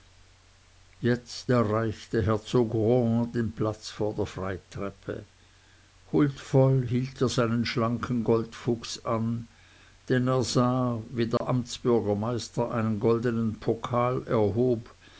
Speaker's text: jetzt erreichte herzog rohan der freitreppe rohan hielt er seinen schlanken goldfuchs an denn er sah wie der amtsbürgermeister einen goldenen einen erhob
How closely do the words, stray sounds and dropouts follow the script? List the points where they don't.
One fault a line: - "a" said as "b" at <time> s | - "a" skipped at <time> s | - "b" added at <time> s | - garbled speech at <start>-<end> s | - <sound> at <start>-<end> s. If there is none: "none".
- "den platz vor" added at 3.3 s
- "rohan" said as "huldvoll" at 6.1 s
- dropout at 11.4-11.4 s
- "einen" said as "pokal" at 13.6 s